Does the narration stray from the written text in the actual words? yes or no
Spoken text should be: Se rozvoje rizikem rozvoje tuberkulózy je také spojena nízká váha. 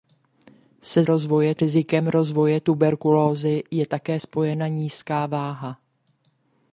no